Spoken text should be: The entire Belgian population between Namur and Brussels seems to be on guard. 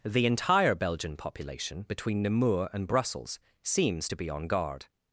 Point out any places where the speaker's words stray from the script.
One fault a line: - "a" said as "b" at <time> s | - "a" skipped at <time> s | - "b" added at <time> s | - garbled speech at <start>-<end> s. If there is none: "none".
none